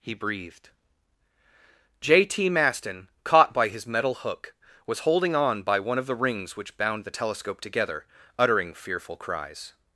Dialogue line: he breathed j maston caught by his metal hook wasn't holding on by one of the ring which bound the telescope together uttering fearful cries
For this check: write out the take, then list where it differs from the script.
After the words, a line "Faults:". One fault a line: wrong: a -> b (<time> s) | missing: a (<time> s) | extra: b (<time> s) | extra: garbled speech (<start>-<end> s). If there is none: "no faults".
he breathed j t maston caught by his metal hook was holding on by one of the rings which bound the telescope together uttering fearful cries
Faults:
extra: t (2.2 s)
wrong: wasn't -> was (4.9 s)
wrong: ring -> rings (6.2 s)